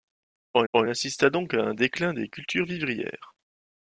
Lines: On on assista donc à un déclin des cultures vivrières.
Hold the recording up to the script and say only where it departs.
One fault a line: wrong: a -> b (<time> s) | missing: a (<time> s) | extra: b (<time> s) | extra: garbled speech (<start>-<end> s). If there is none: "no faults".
no faults